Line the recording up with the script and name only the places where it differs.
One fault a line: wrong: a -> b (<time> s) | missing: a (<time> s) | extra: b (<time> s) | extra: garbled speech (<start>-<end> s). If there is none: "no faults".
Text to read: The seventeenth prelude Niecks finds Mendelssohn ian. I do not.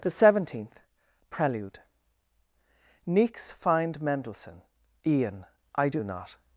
wrong: finds -> find (3.5 s)